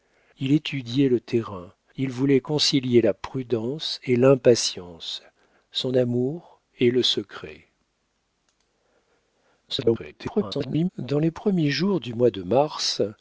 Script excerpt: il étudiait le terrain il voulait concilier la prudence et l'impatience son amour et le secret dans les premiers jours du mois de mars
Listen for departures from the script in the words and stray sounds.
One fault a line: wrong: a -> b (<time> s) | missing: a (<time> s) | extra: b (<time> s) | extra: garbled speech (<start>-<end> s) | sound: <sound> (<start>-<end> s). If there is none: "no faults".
extra: garbled speech (9.7-10.9 s)